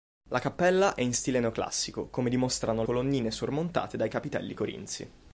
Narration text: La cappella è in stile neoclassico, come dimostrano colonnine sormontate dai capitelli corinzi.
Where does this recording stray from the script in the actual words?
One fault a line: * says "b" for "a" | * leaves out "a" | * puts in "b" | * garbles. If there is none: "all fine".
all fine